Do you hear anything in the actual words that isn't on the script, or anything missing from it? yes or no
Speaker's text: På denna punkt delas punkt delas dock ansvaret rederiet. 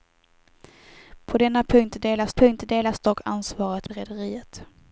no